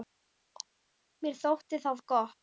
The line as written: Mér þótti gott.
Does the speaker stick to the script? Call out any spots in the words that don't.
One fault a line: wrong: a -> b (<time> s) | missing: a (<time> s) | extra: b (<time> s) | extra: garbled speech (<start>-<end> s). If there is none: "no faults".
extra: það (1.9 s)